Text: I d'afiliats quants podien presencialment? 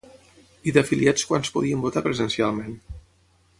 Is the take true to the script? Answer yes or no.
no